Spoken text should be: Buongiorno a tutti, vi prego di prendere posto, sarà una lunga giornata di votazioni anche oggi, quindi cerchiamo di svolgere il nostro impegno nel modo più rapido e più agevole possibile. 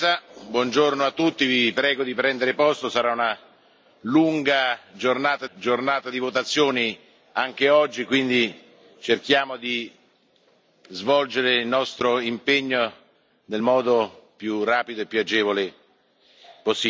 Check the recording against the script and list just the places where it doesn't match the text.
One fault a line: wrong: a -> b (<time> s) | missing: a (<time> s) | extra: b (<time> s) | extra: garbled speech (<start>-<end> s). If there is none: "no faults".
extra: giornata (5.5 s)